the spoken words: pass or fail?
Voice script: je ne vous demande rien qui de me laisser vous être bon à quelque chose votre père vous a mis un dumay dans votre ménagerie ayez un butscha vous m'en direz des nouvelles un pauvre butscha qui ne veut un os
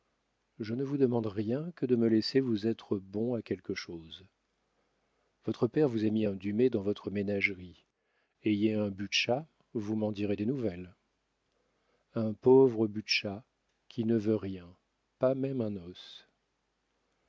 fail